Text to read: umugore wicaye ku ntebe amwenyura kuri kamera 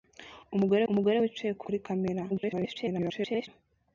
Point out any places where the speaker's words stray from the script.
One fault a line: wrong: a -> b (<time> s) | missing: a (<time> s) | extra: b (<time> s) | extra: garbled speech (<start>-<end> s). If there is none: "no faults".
extra: umugore (0.9 s)
missing: ntebe amwenyura (1.6 s)
extra: garbled speech (2.3-3.5 s)